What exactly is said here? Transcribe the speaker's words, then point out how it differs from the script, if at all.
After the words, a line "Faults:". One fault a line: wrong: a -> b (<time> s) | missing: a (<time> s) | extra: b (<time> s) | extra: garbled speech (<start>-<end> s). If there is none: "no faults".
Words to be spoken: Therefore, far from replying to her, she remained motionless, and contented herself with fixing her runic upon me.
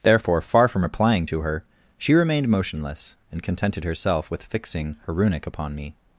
Therefore, far from replying to her, she remained motionless, and contented herself with fixing her runic upon me.
Faults:
no faults